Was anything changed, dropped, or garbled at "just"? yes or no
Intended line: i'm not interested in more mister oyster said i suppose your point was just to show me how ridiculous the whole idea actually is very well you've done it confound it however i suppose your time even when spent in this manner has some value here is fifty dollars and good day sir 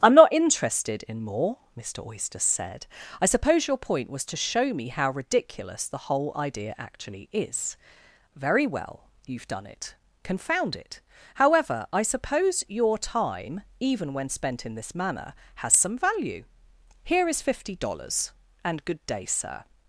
yes